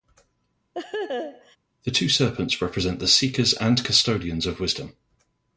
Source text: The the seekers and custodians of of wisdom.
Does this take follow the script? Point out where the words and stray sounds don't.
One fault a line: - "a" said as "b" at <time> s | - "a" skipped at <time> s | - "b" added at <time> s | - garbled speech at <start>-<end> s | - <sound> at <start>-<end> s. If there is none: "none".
- laugh at 0.7-1.6 s
- "two serpents represent" added at 1.9 s
- "of" skipped at 4.6 s